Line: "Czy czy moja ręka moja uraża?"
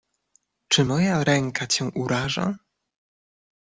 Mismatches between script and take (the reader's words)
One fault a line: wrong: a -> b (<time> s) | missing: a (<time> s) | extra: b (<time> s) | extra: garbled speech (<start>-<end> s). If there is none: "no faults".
missing: czy (0.8 s)
wrong: moja -> cię (1.6 s)